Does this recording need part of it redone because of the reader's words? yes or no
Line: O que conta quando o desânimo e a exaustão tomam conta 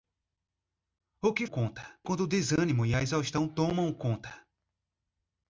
no